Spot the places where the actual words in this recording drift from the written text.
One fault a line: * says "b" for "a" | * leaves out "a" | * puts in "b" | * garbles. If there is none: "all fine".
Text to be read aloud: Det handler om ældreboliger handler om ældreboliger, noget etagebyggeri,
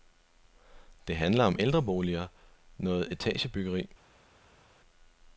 * leaves out "handler om ældreboliger"